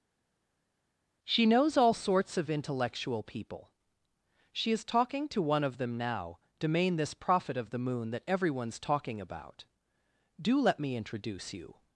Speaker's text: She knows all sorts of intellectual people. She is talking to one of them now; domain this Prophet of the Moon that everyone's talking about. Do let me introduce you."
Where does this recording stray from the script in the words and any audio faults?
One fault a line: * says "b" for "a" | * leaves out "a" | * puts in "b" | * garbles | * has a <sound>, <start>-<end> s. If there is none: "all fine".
all fine